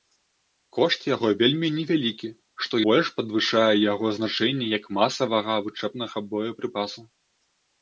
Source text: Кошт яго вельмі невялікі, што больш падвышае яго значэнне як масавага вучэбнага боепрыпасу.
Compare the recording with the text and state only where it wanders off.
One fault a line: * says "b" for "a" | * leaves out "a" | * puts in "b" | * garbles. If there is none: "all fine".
all fine